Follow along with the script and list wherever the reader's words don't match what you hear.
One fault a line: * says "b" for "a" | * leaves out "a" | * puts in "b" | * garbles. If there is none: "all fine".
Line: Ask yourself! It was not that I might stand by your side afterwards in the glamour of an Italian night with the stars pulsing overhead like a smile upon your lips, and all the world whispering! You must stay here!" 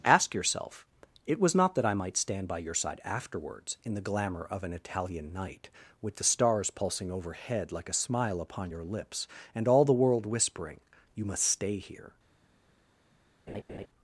all fine